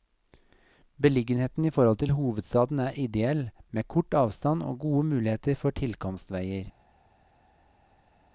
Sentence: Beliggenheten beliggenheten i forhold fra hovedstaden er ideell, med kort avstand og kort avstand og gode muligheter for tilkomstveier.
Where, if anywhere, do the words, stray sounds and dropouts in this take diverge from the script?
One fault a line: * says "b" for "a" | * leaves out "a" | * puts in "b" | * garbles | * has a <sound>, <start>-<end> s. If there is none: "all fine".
* leaves out "beliggenheten"
* says "til" for "fra"
* leaves out "kort avstand og"